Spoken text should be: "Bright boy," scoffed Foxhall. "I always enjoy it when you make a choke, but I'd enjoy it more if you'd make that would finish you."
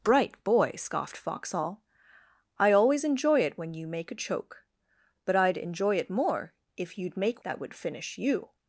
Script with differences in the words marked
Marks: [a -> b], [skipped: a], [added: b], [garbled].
"Bright boy," scoffed Foxhall. "I always enjoy it when you make a choke, but I'd enjoy it more if you'd make that would finish you."